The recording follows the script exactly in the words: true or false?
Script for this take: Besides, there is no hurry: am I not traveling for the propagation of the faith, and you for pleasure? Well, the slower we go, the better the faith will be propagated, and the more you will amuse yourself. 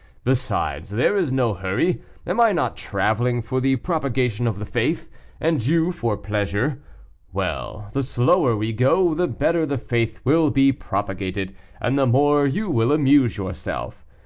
true